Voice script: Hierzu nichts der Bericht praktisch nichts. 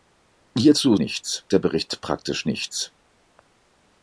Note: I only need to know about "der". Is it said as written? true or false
true